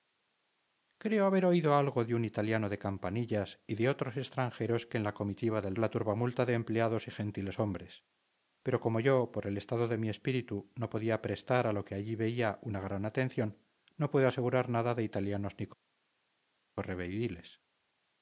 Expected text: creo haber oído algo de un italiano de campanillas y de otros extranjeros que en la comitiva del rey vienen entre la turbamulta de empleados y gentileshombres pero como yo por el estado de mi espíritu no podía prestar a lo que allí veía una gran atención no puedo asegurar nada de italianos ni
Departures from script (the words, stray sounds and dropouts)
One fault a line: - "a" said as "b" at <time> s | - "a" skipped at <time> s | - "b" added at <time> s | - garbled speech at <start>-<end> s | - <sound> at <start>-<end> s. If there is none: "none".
- "rey vienen entre" skipped at 5.8 s